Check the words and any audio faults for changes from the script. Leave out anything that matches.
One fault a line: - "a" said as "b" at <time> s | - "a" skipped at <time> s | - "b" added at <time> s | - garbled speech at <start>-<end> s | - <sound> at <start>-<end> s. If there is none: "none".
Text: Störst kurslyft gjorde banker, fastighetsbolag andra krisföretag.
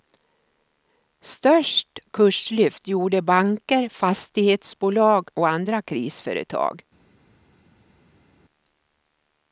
- "och" added at 5.3 s